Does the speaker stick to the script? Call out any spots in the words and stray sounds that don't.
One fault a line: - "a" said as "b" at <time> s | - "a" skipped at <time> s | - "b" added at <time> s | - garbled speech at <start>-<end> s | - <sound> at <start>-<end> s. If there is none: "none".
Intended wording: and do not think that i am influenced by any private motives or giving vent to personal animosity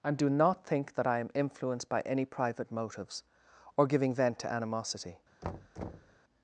- "personal" skipped at 4.5 s
- thud at 5.4-6.2 s